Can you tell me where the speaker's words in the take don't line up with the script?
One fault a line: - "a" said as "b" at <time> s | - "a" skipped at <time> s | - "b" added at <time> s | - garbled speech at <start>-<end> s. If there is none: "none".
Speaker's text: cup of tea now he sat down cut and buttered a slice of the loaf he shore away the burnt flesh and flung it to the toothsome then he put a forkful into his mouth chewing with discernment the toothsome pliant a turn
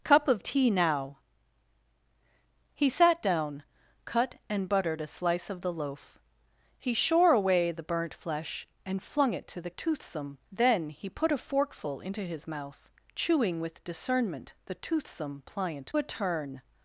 none